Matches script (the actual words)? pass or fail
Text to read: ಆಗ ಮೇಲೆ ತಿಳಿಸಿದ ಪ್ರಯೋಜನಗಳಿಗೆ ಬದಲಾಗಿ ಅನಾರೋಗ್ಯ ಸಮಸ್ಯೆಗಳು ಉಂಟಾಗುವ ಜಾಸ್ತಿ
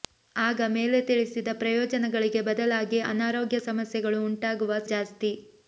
pass